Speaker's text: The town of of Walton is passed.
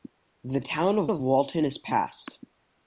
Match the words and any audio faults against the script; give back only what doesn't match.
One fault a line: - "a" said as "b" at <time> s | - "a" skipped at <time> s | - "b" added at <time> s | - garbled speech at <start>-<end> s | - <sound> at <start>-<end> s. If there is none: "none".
none